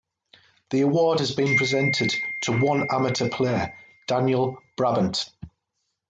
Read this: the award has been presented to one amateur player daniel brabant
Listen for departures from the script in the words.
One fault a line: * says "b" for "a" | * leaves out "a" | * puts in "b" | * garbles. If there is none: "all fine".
all fine